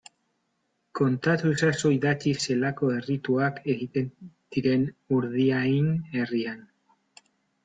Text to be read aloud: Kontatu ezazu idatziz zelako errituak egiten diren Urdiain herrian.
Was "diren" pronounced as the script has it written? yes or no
yes